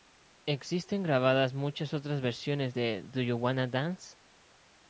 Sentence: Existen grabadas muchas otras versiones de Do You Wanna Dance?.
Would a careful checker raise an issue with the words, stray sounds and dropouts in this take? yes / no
no